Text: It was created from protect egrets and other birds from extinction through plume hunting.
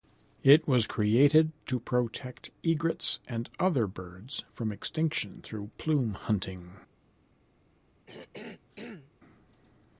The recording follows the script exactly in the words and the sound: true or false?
false